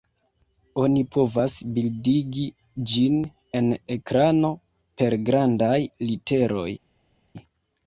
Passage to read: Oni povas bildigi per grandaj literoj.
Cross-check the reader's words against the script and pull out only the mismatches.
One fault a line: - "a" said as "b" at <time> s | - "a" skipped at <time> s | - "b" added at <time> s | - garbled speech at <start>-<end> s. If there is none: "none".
- "ĝin en ekrano" added at 3.0 s